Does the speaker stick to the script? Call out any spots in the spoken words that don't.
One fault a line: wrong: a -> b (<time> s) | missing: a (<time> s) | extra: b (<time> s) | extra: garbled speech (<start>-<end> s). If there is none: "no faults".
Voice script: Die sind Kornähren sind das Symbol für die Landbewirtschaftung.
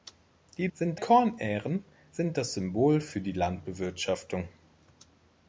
no faults